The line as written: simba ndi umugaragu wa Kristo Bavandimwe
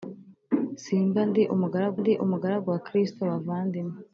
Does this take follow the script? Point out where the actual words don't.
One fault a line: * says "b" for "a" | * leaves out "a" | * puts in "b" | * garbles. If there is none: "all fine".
* puts in "ndi umugaragu"